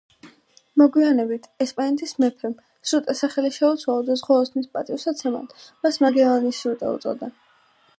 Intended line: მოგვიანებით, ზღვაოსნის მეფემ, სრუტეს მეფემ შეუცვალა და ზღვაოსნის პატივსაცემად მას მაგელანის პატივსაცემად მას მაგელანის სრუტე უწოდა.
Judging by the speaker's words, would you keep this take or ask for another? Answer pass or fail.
fail